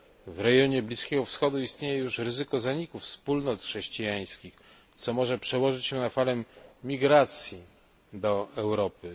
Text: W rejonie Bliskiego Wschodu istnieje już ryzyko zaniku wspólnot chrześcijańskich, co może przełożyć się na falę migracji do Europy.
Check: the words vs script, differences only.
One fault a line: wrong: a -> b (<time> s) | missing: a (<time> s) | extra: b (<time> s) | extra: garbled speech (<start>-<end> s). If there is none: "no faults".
no faults